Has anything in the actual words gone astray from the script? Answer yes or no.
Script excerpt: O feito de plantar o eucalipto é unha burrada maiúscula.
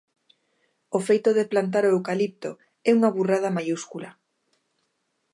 no